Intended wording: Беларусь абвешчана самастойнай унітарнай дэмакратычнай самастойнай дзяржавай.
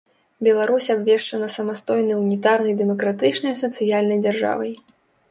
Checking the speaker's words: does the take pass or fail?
fail